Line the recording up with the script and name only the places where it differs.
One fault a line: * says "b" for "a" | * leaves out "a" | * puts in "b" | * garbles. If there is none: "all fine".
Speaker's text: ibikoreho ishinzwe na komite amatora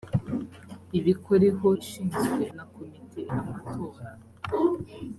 all fine